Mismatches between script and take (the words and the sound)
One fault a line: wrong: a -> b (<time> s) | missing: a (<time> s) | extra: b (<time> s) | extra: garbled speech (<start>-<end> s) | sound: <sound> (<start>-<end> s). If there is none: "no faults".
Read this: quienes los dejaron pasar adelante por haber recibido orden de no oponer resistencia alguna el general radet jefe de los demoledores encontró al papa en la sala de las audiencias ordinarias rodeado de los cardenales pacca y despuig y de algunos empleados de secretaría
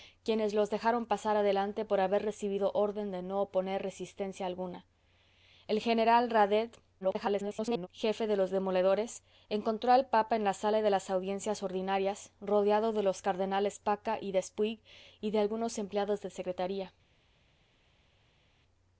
extra: garbled speech (7.0-7.9 s)